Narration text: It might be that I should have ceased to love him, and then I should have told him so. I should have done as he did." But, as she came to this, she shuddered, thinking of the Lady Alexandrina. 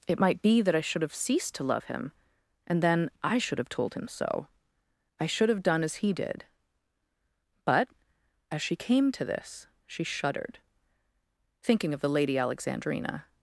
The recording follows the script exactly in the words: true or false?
true